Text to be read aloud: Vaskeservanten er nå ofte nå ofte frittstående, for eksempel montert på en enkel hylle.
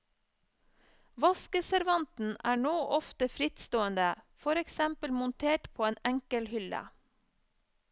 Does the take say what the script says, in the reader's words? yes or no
no